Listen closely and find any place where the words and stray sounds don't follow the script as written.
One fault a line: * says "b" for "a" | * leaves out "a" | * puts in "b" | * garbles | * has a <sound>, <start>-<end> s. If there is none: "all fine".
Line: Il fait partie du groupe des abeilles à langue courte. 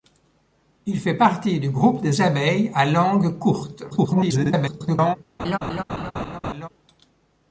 * garbles
* has a laugh, 5.4-6.7 s